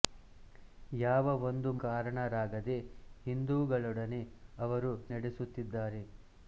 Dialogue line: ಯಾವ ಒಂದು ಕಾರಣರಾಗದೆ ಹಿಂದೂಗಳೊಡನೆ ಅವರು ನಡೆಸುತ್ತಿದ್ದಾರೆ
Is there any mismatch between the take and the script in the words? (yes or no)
no